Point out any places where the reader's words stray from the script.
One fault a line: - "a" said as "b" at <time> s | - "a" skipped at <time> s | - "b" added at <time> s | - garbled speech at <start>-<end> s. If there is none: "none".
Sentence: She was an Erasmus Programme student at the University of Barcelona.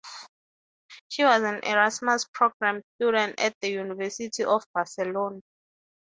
none